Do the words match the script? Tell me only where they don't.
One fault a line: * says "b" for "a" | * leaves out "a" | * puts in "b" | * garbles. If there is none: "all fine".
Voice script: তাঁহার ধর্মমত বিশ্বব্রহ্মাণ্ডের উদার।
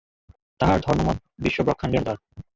all fine